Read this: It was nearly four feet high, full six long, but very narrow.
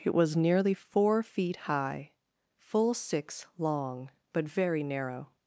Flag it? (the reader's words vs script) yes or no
no